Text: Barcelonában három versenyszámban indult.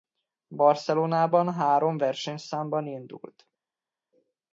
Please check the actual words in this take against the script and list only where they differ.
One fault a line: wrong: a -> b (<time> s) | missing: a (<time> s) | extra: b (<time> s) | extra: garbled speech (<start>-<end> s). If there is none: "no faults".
no faults